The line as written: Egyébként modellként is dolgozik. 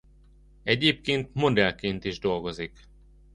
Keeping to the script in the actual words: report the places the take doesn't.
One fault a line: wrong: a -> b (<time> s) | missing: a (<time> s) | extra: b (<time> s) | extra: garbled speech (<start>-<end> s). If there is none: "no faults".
no faults